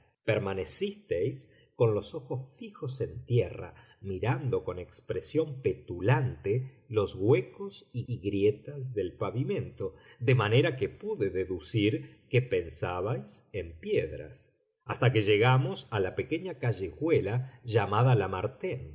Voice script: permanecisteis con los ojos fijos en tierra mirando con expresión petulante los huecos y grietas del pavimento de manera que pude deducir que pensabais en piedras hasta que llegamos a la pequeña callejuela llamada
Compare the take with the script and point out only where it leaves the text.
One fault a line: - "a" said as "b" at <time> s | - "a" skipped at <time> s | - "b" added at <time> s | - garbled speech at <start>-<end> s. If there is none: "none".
- "y" added at 8.1 s